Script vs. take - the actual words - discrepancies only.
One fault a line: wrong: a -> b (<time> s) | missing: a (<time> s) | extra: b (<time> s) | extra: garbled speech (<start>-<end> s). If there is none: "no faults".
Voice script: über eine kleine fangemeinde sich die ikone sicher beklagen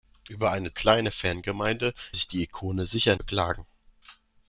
no faults